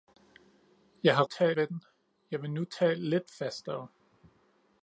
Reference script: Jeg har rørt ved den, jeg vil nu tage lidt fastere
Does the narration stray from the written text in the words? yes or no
yes